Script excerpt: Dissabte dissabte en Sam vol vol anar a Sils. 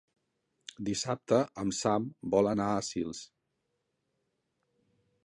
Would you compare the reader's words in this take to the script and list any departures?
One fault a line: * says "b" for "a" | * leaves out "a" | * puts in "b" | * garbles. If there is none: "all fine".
* leaves out "dissabte"
* leaves out "vol"